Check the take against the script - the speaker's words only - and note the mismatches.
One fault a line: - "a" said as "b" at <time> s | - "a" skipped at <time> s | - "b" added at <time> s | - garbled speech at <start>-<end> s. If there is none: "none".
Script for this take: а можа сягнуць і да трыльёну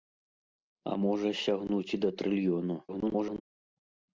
- garbled speech at 2.9-3.4 s